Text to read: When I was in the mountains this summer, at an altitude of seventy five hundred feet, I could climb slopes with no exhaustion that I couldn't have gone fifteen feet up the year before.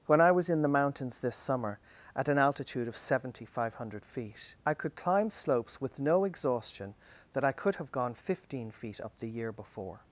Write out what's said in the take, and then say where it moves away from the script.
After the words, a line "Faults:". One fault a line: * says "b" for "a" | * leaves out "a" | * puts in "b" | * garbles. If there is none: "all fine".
When I was in the mountains this summer, at an altitude of seventy five hundred feet, I could climb slopes with no exhaustion that I could have gone fifteen feet up the year before.
Faults:
* says "could" for "couldn't"